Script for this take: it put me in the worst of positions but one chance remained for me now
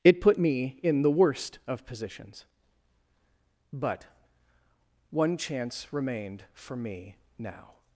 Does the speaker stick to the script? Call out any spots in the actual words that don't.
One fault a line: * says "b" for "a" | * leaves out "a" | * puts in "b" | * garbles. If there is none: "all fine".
all fine